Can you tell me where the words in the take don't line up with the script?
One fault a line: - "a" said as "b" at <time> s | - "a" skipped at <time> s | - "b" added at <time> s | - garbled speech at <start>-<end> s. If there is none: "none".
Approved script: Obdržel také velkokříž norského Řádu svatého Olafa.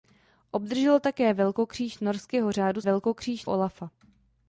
- "svatého" said as "velkokříž" at 2.8 s